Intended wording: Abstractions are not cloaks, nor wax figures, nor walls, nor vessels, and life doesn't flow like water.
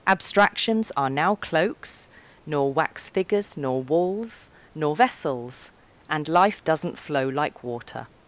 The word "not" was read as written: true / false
false